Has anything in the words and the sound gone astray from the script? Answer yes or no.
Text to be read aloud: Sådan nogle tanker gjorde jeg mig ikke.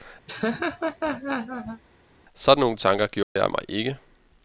yes